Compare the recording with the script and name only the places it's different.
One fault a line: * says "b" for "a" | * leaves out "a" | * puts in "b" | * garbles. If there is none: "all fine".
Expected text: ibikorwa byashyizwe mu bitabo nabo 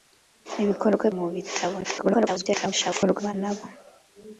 * leaves out "byashyizwe"
* garbles